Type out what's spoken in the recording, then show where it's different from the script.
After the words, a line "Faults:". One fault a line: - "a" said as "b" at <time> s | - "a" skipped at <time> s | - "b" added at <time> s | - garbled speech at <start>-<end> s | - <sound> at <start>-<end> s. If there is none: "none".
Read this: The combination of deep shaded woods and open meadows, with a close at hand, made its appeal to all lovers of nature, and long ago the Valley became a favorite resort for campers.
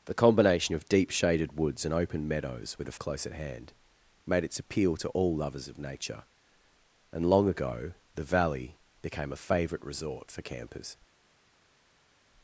The combination of deep shaded woods and open meadows, with a close at hand, made its appeal to all lovers of nature, and long ago the Valley became a favorite resort for campers.
Faults:
none